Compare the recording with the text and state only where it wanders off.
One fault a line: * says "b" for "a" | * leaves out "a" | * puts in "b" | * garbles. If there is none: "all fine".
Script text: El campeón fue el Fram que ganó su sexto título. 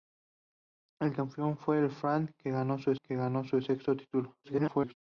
* puts in "que ganó su"
* garbles